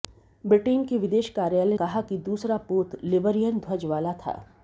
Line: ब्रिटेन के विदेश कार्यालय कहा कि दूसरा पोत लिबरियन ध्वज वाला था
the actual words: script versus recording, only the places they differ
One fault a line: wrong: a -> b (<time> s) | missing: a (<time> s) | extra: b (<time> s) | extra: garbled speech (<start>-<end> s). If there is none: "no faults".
no faults